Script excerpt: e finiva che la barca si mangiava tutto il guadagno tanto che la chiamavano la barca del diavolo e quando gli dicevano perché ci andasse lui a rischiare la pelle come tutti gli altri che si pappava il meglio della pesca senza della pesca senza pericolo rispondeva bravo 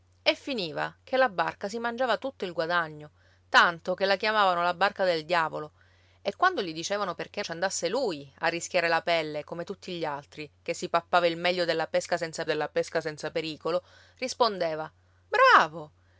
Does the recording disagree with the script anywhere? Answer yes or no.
no